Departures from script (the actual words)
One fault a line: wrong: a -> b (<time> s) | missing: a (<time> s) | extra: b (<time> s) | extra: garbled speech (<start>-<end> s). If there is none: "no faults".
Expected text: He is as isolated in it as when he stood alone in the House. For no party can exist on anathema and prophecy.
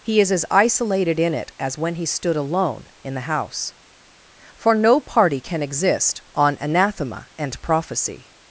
no faults